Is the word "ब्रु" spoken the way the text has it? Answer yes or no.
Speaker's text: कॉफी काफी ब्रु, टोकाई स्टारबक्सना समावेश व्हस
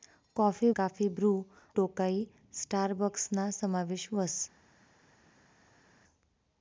yes